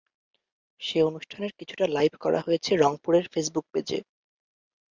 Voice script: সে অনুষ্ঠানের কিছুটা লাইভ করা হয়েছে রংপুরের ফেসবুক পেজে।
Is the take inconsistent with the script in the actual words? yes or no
no